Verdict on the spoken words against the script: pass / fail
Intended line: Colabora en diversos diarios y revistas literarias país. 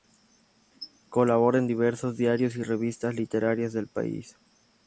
fail